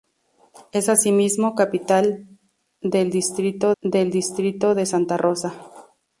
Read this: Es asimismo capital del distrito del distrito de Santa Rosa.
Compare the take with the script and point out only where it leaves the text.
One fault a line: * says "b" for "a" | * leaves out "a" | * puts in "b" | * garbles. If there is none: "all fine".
all fine